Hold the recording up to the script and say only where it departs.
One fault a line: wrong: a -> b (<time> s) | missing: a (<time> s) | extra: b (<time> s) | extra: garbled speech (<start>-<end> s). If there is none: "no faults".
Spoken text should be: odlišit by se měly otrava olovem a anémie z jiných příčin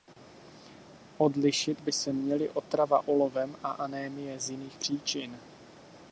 no faults